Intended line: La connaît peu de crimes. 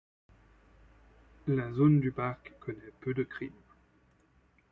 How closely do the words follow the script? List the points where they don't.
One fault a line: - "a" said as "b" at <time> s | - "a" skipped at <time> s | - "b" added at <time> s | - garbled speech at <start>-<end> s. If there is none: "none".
- "zone du parc" added at 1.7 s